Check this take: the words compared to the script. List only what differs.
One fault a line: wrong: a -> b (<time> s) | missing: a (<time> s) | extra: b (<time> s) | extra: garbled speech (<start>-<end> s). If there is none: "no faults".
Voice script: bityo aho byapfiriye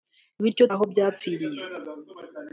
no faults